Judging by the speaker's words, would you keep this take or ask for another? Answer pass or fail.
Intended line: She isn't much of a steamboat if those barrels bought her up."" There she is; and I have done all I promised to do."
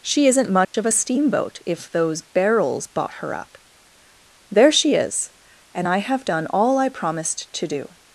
pass